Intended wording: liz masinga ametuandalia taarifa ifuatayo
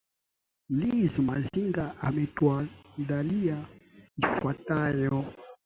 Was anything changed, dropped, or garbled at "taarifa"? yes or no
yes